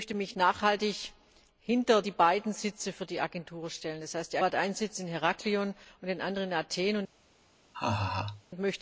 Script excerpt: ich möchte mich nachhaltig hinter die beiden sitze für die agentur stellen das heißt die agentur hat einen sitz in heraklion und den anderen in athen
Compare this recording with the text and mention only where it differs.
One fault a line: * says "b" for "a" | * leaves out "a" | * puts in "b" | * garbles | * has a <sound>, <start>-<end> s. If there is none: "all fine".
* leaves out "agentur"
* has a laugh, 7.7-8.4 s